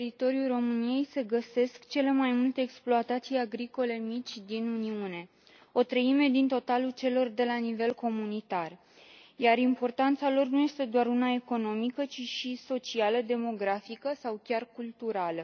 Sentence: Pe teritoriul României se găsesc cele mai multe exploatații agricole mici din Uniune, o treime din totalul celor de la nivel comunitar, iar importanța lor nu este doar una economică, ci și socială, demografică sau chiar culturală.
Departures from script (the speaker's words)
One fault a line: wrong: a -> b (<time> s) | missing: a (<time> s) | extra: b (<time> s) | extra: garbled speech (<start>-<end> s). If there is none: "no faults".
no faults